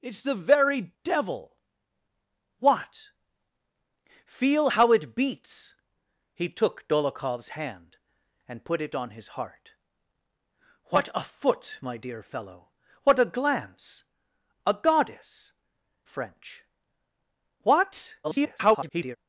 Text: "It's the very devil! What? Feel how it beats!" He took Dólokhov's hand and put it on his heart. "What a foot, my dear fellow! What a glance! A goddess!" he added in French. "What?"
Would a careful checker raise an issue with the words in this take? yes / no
yes